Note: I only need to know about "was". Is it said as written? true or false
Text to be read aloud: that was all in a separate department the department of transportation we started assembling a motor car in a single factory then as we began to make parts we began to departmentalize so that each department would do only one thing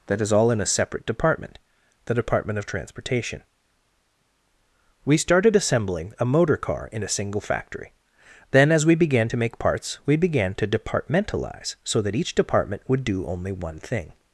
false